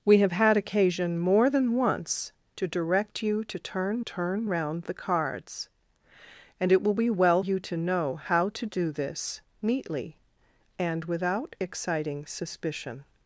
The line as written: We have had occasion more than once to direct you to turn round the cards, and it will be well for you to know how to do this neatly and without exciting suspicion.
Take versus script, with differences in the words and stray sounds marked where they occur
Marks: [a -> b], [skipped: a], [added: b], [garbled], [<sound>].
We have had occasion more than once to direct you to turn [added: turn] round the cards, and it will be well [skipped: for] you to know how to do this neatly and without exciting suspicion.